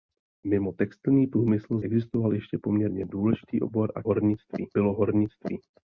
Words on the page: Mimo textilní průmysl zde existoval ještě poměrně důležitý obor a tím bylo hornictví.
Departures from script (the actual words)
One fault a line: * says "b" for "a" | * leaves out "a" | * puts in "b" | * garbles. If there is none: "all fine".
* leaves out "zde"
* says "hornictví" for "tím"